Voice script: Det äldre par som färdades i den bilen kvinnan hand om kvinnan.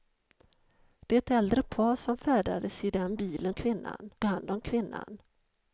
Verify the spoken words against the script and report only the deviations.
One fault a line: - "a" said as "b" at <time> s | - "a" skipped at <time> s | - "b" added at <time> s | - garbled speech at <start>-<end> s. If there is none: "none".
none